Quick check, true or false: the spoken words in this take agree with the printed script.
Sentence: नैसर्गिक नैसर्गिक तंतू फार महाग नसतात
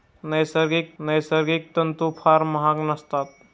true